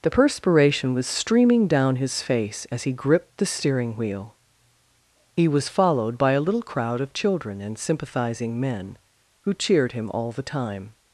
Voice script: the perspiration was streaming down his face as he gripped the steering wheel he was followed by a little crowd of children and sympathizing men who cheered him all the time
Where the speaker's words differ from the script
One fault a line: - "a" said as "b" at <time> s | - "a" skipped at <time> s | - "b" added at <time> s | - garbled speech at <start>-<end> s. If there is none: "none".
none